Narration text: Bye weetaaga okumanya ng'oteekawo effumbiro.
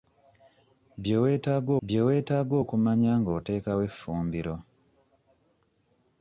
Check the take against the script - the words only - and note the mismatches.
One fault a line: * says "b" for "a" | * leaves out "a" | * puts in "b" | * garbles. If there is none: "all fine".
* puts in "bye weetaaga"